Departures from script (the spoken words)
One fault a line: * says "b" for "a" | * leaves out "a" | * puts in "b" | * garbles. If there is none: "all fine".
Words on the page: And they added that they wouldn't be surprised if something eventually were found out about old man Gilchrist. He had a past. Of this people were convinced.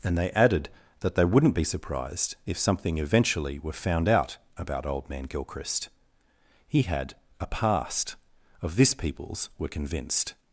* says "peoples" for "people"